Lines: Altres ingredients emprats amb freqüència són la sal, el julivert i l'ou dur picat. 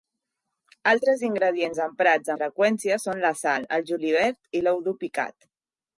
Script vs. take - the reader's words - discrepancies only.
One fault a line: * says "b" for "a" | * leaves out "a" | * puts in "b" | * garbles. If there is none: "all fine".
* leaves out "amb"